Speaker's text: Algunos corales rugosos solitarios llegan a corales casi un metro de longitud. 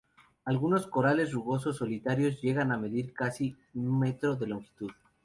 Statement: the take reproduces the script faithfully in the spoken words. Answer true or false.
false